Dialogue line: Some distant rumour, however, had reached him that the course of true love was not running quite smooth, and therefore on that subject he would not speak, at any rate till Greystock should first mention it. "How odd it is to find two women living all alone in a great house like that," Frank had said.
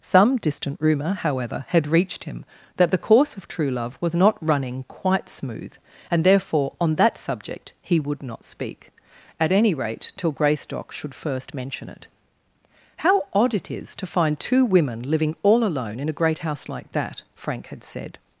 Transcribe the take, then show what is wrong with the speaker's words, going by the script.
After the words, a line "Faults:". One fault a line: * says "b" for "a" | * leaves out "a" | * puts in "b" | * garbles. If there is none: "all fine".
Some distant rumour, however, had reached him that the course of true love was not running quite smooth, and therefore on that subject he would not speak, at any rate till Greystock should first mention it. "How odd it is to find two women living all alone in a great house like that," Frank had said.
Faults:
all fine